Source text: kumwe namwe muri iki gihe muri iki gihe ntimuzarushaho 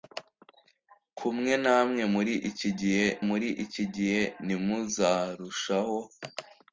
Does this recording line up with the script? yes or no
yes